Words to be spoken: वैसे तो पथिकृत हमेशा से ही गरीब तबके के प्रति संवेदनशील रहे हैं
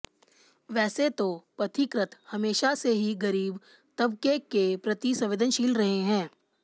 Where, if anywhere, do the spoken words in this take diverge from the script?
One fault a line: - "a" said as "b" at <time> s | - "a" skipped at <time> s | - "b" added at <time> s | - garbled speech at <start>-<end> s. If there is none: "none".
none